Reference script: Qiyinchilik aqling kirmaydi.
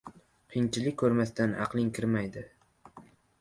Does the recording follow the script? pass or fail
fail